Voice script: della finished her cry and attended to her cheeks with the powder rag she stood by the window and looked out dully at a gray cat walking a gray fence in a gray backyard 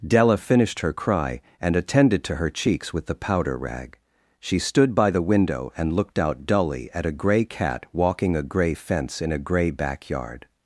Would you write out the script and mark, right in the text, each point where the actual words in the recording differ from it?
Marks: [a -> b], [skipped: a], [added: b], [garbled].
della finished her cry and attended to her cheeks with the powder rag she stood by the window and looked out dully at a gray cat walking a gray fence in a gray backyard